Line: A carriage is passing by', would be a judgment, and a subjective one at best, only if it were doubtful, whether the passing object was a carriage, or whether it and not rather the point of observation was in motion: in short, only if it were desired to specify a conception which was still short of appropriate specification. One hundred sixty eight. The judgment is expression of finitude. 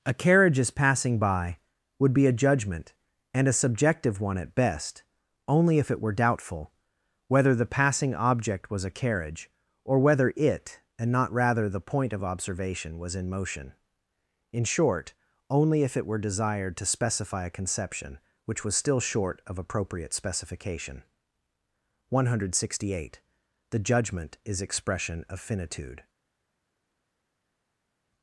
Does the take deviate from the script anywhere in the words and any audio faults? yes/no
no